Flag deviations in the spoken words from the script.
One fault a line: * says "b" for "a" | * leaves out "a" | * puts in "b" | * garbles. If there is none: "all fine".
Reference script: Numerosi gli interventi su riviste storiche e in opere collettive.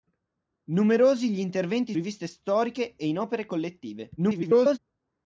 * leaves out "su"
* garbles